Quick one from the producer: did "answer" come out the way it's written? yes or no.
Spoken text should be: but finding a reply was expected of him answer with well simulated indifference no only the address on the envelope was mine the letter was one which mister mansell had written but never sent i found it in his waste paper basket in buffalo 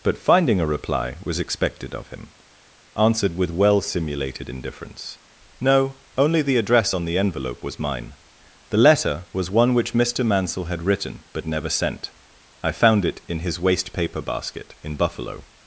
no